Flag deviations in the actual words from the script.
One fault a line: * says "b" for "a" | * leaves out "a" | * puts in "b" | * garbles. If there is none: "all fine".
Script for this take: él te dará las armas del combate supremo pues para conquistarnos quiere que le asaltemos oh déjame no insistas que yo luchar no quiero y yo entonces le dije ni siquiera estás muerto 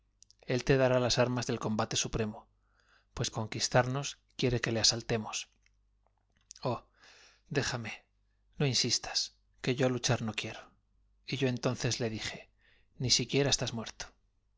* leaves out "para"